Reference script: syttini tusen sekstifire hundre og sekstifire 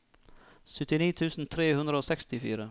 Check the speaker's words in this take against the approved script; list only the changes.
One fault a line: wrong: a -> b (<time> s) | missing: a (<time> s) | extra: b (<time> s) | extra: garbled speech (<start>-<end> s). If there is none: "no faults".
wrong: sekstifire -> tre (1.6 s)